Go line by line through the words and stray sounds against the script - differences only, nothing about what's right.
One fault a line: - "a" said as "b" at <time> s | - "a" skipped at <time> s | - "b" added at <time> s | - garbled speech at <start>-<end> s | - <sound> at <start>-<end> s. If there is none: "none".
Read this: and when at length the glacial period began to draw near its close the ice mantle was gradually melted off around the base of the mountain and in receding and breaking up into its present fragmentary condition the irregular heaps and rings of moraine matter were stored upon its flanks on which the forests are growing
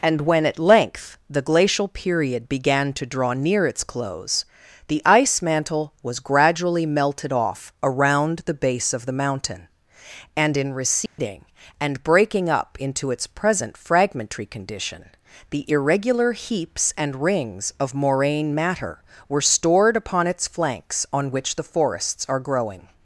- dropout at 11.1-11.2 s